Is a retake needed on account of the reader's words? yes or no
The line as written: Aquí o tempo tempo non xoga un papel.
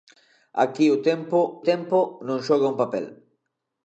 no